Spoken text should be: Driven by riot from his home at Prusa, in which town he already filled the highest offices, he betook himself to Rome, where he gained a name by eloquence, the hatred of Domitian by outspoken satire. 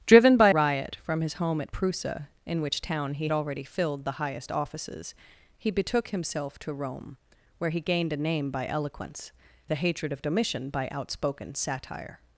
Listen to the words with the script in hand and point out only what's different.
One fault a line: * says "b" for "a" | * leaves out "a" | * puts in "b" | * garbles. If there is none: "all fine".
all fine